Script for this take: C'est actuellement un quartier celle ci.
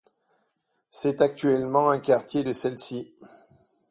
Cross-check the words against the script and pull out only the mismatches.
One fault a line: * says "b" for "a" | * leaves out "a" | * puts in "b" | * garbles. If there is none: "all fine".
* puts in "de"